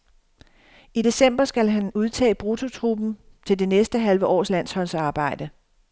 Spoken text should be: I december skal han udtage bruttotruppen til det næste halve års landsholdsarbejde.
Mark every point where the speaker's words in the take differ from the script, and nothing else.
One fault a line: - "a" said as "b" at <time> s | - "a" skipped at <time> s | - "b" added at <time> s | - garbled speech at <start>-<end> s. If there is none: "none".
none